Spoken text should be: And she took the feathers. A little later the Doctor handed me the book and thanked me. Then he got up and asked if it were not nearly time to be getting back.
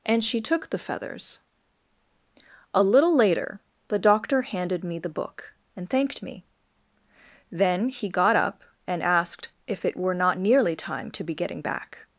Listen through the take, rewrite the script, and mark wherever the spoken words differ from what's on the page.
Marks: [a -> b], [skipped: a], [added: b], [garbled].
And she took the feathers. A little later the Doctor handed me the book and thanked me. Then he got up and asked if it were not nearly time to be getting back.